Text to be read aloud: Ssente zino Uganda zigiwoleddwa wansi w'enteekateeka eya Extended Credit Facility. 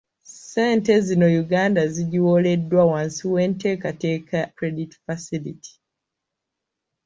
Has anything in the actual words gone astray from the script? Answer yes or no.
yes